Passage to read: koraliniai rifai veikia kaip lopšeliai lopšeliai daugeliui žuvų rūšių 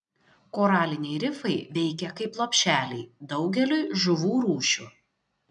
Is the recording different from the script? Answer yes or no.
yes